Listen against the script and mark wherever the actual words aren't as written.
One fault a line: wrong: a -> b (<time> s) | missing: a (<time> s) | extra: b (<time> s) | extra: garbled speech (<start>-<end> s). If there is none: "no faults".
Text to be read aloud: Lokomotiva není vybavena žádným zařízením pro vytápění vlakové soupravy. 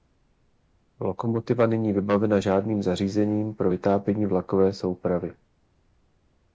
no faults